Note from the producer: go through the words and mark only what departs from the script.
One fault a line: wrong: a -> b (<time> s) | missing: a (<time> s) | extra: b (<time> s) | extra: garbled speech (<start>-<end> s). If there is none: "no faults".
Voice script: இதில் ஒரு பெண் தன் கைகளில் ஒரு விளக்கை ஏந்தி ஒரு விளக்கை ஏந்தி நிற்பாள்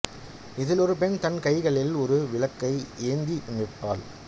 missing: ஒரு விளக்கை ஏந்தி (3.4 s)